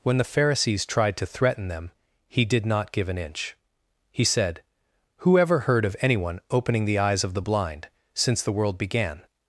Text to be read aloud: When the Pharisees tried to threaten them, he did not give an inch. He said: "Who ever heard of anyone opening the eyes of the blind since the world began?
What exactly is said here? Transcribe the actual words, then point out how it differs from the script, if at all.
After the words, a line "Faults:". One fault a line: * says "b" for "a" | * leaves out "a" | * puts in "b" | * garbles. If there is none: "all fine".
When the Pharisees tried to threaten them, he did not give an inch. He said: "Who ever heard of anyone opening the eyes of the blind since the world began?
Faults:
all fine